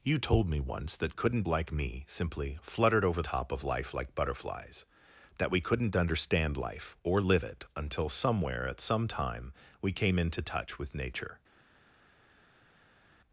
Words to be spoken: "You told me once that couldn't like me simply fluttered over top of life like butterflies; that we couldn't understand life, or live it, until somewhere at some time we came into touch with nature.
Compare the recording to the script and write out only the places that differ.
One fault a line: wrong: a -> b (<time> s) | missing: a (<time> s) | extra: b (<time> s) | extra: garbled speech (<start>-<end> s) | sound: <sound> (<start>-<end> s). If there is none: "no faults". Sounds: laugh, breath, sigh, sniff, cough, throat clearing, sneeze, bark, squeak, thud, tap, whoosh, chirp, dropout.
no faults